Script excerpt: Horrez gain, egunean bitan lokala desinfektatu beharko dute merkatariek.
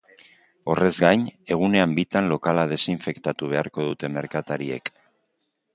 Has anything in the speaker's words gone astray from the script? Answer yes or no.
no